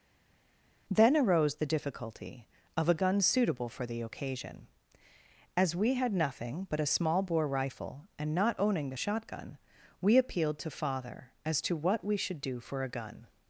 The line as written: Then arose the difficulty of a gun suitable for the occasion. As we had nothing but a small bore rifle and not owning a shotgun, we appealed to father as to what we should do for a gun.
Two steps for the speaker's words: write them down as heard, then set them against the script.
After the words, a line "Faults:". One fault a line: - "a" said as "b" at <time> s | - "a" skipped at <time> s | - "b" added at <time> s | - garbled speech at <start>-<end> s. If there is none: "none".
Then arose the difficulty of a gun suitable for the occasion. As we had nothing but a small bore rifle and not owning the shotgun, we appealed to father as to what we should do for a gun.
Faults:
- "a" said as "the" at 8.9 s